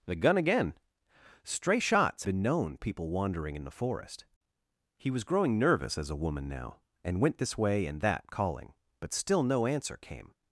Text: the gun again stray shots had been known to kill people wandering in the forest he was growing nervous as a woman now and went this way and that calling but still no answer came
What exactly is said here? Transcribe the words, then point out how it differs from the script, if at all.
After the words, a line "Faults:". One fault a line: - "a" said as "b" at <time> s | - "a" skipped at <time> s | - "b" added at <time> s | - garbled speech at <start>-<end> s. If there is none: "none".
the gun again stray shots been known people wandering in the forest he was growing nervous as a woman now and went this way and that calling but still no answer came
Faults:
- "had" skipped at 2.2 s
- "to kill" skipped at 2.8 s